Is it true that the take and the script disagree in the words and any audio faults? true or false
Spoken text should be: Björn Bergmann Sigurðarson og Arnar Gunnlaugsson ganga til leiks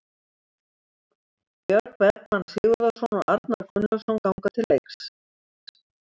false